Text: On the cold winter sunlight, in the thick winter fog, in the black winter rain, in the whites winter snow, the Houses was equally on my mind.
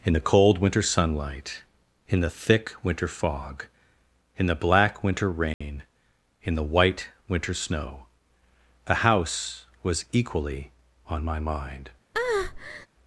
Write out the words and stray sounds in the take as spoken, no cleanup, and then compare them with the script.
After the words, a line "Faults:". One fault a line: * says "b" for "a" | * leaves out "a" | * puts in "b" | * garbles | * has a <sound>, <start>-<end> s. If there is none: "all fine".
In the cold winter sunlight, in the thick winter fog, in the black winter rain, in the white winter snow, the House was equally on my mind.
Faults:
* says "In" for "On"
* has a dropout, 5.5-5.6 s
* says "white" for "whites"
* says "House" for "Houses"
* has a breath, 12.1-12.9 s